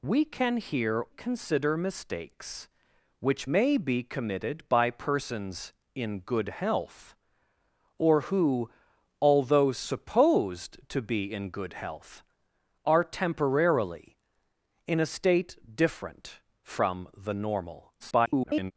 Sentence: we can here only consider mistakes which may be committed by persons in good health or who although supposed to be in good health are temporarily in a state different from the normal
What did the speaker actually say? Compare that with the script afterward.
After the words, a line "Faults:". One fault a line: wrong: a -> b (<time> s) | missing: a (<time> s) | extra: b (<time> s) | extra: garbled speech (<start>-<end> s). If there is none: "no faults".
we can here consider mistakes which may be committed by persons in good health or who although supposed to be in good health are temporarily in a state different from the normal [garbled]
Faults:
missing: only (1.1 s)
extra: garbled speech (18.0-18.7 s)